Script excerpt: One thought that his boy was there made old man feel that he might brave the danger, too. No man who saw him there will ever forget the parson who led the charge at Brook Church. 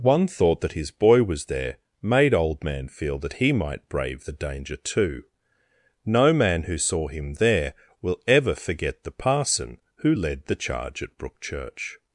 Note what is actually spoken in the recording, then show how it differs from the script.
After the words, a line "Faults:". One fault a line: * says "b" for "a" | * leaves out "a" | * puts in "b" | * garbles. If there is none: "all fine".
One thought that his boy was there made old man feel that he might brave the danger, too. No man who saw him there will ever forget the parson who led the charge at Brook Church.
Faults:
all fine